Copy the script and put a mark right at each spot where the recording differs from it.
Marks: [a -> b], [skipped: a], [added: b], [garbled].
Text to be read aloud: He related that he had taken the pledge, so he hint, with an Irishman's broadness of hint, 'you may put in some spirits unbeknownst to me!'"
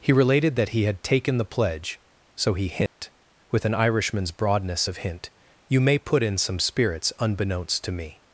He related that he had taken the pledge, so he hint, with an Irishman's broadness of hint, 'you may put in some spirits unbeknownst to me!'"